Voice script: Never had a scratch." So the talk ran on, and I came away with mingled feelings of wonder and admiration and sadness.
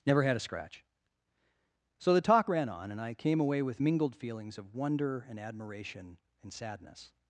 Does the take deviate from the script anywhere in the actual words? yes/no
no